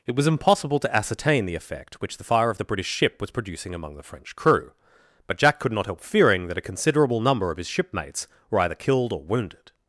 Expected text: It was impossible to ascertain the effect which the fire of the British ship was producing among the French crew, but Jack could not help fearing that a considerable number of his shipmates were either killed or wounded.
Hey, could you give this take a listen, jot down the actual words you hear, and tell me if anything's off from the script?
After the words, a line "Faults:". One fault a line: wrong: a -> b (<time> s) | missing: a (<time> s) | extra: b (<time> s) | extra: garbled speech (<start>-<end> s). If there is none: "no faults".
It was impossible to ascertain the effect which the fire of the British ship was producing among the French crew, but Jack could not help fearing that a considerable number of his shipmates were either killed or wounded.
Faults:
no faults